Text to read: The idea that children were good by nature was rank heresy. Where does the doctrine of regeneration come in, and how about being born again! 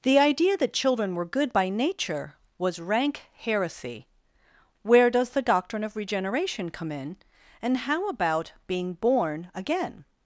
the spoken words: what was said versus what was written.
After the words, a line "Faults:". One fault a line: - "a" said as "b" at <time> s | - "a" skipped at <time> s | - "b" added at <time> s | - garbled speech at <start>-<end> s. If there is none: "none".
The idea that children were good by nature was rank heresy. Where does the doctrine of regeneration come in, and how about being born again!
Faults:
none